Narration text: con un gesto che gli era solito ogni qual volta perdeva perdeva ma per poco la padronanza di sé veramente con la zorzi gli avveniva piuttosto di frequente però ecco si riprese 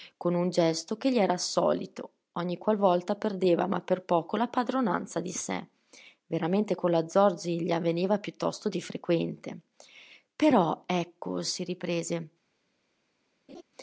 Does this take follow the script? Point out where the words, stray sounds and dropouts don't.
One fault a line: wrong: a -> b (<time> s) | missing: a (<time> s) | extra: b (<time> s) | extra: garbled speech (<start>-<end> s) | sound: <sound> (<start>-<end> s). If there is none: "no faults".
missing: perdeva (3.7 s)
sound: laugh (13.5-13.6 s)